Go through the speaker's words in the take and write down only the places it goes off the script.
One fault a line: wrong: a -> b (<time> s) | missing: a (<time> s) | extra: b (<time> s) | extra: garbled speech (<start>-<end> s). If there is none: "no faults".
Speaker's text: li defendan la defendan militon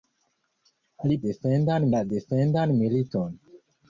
no faults